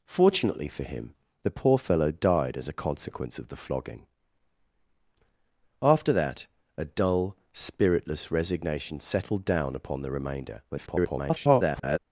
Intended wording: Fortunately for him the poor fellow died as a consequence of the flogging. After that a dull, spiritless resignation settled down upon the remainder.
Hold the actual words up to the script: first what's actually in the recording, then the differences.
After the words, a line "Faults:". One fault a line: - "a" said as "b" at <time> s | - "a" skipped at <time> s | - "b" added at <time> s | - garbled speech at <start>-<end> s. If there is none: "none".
Fortunately for him the poor fellow died as a consequence of the flogging. After that a dull, spiritless resignation settled down upon the remainder. [garbled]
Faults:
- garbled speech at 10.7-12.0 s